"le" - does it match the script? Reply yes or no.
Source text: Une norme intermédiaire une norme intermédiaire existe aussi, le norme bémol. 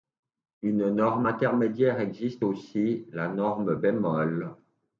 no